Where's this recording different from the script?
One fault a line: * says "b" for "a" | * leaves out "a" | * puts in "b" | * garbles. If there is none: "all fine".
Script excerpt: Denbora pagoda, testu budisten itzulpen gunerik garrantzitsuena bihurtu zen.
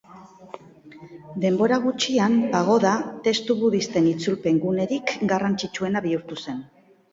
* puts in "gutxian"